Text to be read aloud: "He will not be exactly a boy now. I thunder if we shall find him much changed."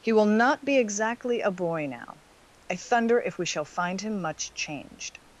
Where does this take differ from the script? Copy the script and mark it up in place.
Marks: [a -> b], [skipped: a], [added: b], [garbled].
"He will not be exactly a boy now. I thunder if we shall find him much changed."